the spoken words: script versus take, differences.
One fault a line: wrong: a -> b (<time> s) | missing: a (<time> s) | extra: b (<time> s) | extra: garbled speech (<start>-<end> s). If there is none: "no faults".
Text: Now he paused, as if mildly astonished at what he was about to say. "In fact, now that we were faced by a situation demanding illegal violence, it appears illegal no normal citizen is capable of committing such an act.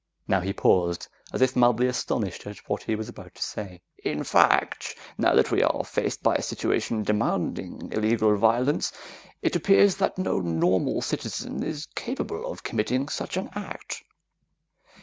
wrong: were -> are (5.6 s)
wrong: illegal -> that (10.0 s)